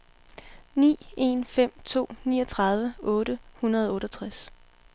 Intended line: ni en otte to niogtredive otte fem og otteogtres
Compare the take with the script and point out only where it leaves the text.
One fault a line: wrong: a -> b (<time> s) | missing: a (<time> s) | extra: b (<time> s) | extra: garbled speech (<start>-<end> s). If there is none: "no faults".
wrong: otte -> fem (1.4 s)
wrong: fem -> hundrede (3.6 s)